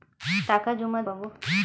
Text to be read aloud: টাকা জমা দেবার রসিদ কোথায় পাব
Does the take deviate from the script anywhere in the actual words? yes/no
yes